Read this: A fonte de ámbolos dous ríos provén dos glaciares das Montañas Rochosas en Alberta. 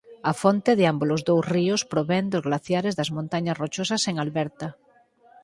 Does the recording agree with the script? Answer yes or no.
yes